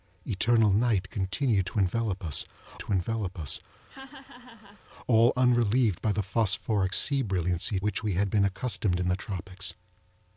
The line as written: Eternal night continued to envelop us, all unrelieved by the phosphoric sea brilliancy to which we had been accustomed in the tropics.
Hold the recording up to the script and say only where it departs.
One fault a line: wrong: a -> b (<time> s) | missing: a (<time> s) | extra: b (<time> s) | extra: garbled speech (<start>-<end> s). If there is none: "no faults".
extra: to envelop us (2.8 s)
missing: to (7.8 s)